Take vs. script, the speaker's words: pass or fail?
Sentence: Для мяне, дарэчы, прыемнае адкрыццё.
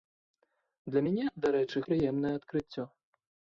pass